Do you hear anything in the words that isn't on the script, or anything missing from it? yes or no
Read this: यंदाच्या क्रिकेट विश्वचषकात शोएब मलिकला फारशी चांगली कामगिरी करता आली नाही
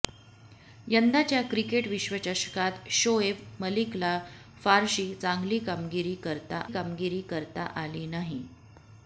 yes